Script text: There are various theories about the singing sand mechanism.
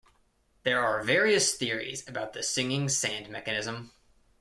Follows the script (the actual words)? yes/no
yes